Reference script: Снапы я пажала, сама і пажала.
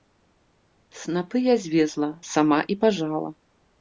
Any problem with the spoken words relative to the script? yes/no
yes